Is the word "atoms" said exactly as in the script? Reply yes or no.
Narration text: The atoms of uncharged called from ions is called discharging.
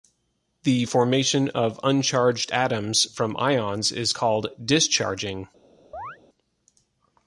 no